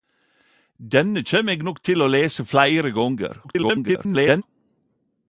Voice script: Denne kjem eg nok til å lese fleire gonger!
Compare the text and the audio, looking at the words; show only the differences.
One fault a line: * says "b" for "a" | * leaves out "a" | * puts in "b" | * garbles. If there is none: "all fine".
* garbles